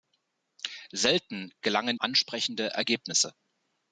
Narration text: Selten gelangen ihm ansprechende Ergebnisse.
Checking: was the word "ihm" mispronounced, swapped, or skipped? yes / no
yes